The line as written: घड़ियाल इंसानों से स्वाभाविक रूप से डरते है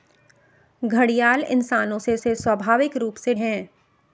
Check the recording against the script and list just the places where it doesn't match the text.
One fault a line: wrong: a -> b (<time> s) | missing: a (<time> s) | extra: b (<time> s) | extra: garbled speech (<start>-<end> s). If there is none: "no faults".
extra: से (2.2 s)
missing: डरते (3.3 s)